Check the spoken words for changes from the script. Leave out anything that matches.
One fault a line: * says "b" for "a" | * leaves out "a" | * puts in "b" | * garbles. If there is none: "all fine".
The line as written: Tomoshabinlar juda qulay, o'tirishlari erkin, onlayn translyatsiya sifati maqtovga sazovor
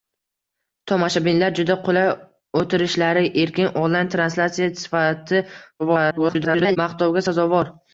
* garbles